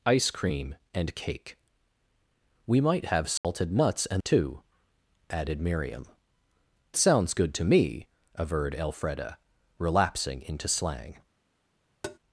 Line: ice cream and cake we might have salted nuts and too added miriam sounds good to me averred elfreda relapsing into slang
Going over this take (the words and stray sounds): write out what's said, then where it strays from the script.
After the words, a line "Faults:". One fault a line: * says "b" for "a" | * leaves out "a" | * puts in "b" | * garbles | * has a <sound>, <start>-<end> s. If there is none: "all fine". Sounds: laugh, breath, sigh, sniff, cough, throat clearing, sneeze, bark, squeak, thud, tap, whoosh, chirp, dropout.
ice cream and cake we might have salted nuts and too added miriam sounds good to me averred elfreda relapsing into slang
Faults:
* has a dropout, 3.4-3.4 s
* has a tap, 12.0-12.2 s